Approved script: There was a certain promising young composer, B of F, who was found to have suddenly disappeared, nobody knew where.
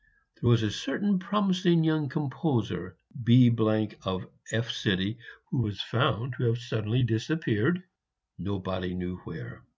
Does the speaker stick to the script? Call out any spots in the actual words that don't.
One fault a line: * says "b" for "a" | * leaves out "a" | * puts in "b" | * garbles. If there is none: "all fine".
all fine